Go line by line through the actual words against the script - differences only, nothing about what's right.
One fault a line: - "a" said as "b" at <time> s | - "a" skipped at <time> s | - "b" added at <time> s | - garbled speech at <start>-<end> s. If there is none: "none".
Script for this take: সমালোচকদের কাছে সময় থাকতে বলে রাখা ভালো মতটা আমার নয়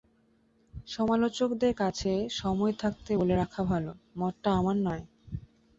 none